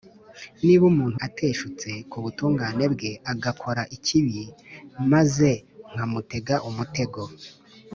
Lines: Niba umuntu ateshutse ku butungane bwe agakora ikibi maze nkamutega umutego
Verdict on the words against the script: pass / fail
pass